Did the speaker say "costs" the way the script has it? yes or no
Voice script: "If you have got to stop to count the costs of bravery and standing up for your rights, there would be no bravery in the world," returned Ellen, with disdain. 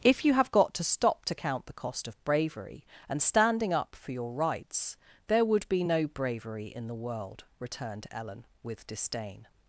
no